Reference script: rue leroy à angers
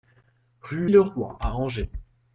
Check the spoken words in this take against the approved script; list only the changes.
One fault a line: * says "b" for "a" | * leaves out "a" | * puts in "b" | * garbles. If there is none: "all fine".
all fine